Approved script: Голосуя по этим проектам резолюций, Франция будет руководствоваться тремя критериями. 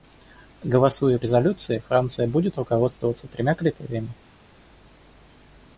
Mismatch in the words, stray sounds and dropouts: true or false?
true